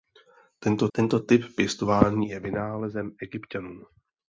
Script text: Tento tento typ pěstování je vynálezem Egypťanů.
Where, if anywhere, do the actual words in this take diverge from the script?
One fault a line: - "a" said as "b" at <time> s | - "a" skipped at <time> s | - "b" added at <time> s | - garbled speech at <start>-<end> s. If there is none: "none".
none